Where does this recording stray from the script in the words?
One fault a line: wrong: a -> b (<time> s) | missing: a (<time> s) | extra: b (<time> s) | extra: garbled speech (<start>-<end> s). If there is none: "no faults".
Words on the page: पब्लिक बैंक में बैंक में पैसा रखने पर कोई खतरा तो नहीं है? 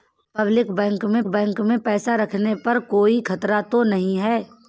no faults